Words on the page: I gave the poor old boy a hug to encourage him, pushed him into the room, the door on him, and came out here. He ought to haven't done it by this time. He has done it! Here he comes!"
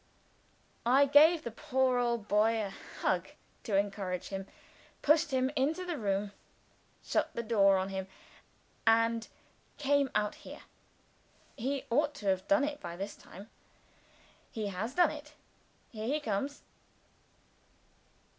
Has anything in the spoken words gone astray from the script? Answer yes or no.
yes